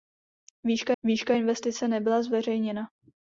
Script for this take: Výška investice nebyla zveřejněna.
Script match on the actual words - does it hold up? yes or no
no